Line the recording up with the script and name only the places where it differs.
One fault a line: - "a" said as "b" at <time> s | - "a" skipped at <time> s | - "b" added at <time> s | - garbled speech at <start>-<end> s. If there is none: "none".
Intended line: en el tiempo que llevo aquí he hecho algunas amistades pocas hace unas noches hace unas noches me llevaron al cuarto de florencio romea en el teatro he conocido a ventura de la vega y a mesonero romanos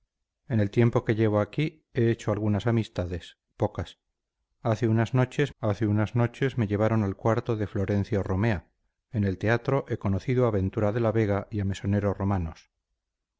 none